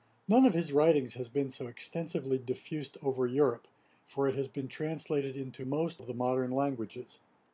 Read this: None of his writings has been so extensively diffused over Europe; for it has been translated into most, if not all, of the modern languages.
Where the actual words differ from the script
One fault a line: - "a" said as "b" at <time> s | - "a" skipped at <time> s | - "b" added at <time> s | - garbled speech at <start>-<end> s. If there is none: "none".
- "if not all" skipped at 6.0 s